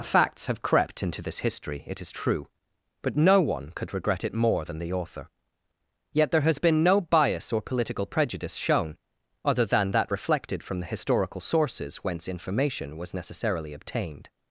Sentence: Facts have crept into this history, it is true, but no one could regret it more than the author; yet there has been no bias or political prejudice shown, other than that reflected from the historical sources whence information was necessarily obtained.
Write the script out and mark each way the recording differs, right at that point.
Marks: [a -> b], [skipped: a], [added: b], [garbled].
Facts have crept into this history, it is true, but no one could regret it more than the author; yet there has been no bias or political prejudice shown, other than that reflected from the historical sources whence information was necessarily obtained.